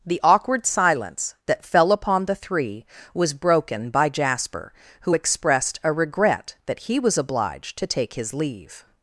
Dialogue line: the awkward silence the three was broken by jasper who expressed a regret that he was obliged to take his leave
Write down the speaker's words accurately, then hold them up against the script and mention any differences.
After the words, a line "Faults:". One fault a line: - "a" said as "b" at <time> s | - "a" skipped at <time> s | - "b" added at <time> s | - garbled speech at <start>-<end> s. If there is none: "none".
the awkward silence that fell upon the three was broken by jasper who expressed a regret that he was obliged to take his leave
Faults:
- "that fell upon" added at 1.4 s